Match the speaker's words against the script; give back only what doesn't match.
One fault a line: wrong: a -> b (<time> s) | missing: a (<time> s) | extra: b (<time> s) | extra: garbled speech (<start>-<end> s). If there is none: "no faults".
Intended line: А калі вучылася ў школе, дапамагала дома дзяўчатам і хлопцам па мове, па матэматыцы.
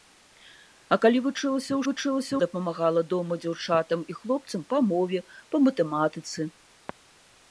wrong: школе -> вучылася (1.9 s)